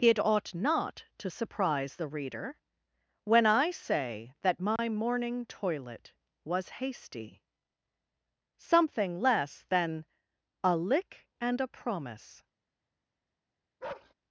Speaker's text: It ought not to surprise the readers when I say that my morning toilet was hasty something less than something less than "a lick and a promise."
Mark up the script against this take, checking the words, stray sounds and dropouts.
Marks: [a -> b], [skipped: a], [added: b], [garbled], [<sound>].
It ought not to surprise the [readers -> reader] when I say that my [dropout] morning toilet was hasty something less than [skipped: something less than] "a lick and a promise." [bark]